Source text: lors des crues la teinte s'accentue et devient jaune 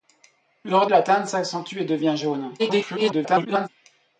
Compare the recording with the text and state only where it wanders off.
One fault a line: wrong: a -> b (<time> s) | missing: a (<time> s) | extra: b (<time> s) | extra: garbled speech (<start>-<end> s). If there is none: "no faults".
missing: des crues (0.9 s)
extra: garbled speech (2.6-3.7 s)